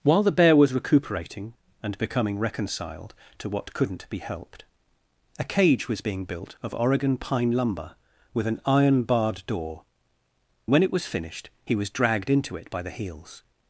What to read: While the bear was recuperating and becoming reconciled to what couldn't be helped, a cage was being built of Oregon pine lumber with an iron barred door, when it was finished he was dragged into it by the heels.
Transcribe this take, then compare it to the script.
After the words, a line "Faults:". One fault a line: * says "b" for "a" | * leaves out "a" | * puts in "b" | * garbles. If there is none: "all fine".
While the bear was recuperating and becoming reconciled to what couldn't be helped, a cage was being built of Oregon pine lumber with an iron barred door, when it was finished he was dragged into it by the heels.
Faults:
all fine